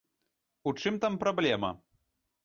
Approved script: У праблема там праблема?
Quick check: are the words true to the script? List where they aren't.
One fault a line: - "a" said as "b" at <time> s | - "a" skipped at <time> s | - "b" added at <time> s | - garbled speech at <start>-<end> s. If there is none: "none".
- "праблема" said as "чым" at 0.8 s